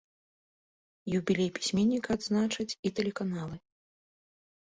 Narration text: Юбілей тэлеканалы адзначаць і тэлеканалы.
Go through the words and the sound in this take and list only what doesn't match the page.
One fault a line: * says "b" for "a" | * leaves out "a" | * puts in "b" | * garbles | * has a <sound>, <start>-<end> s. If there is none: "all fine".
* says "пісьменніка" for "тэлеканалы"